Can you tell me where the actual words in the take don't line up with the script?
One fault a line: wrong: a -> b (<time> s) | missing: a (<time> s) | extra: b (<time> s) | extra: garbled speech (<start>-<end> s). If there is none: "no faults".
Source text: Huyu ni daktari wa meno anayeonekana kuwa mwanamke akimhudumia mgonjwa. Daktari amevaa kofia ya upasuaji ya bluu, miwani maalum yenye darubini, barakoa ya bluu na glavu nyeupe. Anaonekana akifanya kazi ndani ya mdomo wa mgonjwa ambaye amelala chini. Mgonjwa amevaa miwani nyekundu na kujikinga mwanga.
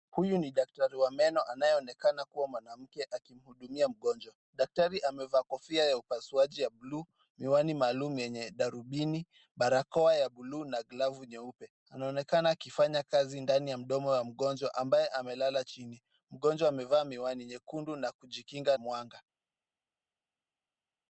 no faults